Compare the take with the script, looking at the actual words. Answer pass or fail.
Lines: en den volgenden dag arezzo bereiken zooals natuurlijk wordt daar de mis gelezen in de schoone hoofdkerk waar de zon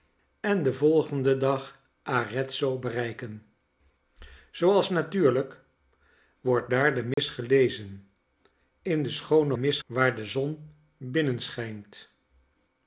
fail